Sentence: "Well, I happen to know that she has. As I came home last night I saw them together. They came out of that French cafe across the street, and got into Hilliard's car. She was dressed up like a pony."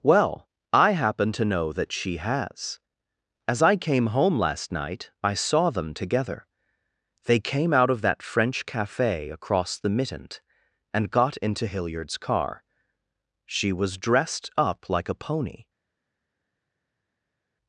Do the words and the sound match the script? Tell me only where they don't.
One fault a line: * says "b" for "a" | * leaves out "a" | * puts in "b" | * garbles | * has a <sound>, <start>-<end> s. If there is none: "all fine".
* says "mittent" for "street"